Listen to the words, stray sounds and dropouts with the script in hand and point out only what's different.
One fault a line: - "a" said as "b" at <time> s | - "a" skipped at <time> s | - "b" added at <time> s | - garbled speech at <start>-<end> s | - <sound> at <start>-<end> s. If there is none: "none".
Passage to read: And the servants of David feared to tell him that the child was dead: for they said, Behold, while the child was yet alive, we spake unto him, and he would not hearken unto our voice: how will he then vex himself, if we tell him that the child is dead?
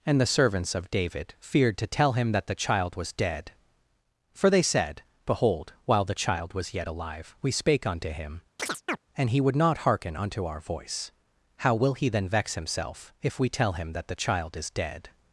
- chirp at 8.6-9.0 s